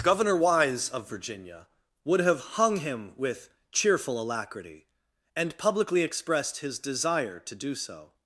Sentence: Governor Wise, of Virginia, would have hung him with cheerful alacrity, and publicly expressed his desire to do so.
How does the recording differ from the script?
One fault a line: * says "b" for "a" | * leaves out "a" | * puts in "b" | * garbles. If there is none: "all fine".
all fine